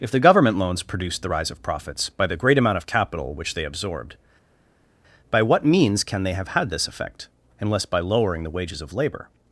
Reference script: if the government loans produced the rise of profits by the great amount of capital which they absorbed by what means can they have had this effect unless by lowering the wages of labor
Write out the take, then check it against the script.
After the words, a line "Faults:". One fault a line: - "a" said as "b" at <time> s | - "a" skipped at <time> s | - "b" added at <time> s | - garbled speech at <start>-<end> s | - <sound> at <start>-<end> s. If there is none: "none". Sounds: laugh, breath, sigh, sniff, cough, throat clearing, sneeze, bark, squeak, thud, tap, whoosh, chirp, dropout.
if the government loans produced the rise of profits by the great amount of capital which they absorbed by what means can they have had this effect unless by lowering the wages of labor
Faults:
none